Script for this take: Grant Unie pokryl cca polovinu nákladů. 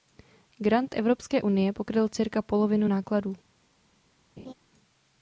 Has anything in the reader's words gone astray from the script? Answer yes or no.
yes